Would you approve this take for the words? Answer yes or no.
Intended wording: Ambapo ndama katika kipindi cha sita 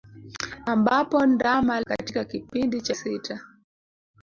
yes